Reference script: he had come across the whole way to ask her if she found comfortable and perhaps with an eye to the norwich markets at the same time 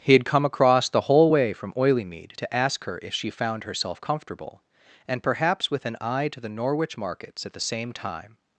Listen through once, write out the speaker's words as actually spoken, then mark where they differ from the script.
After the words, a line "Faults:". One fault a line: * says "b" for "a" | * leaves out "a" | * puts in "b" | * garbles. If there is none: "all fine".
he had come across the whole way from oileymead to ask her if she found herself comfortable and perhaps with an eye to the norwich markets at the same time
Faults:
* puts in "from oileymead"
* puts in "herself"